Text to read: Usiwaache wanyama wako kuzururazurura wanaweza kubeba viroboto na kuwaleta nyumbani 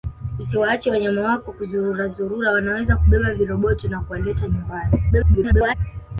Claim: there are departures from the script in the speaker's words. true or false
true